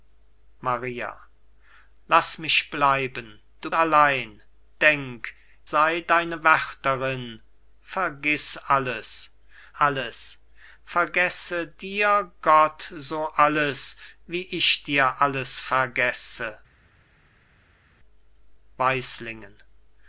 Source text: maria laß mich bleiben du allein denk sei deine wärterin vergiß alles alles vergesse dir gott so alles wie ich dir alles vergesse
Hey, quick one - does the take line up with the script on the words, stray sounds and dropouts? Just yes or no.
yes